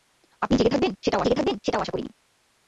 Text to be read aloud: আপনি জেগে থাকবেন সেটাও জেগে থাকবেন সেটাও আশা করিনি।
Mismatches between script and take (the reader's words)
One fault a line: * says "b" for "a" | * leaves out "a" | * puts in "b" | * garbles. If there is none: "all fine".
all fine